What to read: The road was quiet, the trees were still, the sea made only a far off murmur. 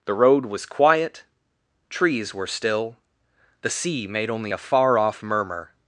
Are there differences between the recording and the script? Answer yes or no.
yes